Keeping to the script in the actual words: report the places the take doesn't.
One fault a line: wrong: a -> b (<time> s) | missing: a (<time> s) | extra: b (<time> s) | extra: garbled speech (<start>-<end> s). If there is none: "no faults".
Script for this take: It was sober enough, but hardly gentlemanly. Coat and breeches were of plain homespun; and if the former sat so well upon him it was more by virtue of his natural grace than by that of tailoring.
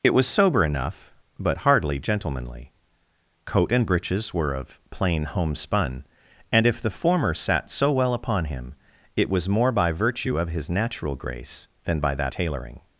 missing: of (12.3 s)